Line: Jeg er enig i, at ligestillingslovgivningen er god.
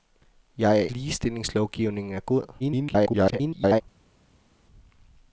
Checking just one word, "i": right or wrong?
wrong